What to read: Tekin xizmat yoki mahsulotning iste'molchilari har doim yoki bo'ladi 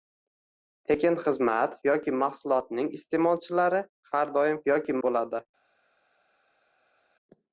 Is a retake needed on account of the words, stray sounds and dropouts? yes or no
no